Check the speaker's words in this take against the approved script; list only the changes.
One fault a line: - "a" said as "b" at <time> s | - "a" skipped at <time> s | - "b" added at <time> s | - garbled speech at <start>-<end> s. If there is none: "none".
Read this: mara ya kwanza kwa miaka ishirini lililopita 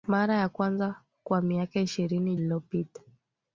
none